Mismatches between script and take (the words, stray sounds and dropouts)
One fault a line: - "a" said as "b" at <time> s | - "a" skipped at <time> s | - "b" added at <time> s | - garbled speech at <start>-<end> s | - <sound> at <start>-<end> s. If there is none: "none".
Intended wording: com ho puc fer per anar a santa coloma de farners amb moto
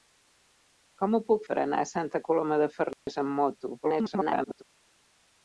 - "fer" skipped at 1.4 s
- dropout at 2.9-3.1 s
- garbled speech at 3.8-4.6 s